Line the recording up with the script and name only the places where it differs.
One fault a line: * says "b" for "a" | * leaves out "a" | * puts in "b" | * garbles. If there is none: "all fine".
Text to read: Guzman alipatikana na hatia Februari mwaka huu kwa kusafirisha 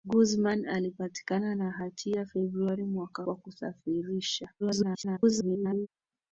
* leaves out "huu"
* garbles